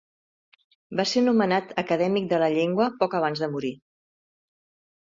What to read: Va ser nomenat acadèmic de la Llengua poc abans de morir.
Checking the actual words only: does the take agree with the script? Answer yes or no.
yes